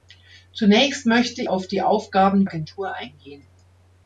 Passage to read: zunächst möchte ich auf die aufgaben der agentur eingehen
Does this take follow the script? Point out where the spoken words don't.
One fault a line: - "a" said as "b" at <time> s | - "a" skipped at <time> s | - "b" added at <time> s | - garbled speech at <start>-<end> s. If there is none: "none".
- "ich" skipped at 1.4 s
- "der" skipped at 2.5 s